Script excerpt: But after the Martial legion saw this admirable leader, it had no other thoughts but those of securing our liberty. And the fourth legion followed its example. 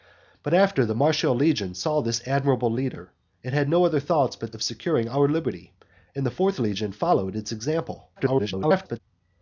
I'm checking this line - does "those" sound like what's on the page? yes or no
no